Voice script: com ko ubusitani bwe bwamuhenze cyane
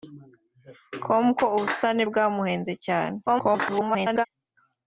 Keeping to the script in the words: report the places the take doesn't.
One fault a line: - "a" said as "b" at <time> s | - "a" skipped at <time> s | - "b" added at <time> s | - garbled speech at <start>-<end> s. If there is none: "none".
- "bwe" skipped at 2.0 s
- garbled speech at 3.3-4.3 s